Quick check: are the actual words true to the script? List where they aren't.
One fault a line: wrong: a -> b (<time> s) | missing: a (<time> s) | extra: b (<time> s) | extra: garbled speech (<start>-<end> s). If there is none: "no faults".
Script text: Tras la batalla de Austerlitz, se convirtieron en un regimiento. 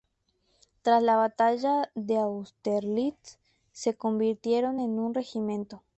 no faults